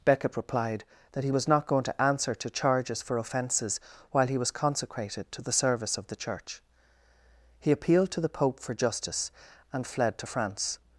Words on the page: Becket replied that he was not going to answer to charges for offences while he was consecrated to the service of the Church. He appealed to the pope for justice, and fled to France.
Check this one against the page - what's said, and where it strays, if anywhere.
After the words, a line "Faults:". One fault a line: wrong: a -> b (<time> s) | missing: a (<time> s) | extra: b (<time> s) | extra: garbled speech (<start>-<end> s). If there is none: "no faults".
Becket replied that he was not going to answer to charges for offences while he was consecrated to the service of the Church. He appealed to the pope for justice, and fled to France.
Faults:
no faults